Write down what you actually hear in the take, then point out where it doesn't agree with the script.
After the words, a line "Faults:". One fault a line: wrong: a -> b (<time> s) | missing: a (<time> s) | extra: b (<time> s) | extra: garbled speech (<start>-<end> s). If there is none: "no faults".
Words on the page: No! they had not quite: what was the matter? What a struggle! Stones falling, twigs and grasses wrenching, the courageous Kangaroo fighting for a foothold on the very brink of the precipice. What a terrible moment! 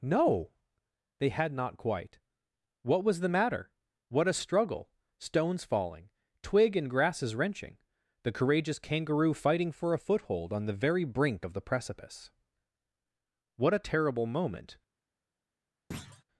No! they had not quite: what was the matter? What a struggle! Stones falling, twig and grasses wrenching, the courageous Kangaroo fighting for a foothold on the very brink of the precipice. What a terrible moment!
Faults:
wrong: twigs -> twig (6.4 s)